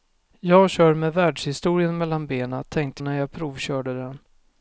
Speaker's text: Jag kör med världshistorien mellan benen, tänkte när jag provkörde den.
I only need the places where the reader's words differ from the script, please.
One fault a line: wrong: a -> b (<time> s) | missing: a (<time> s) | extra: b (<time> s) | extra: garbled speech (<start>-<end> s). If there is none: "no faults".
no faults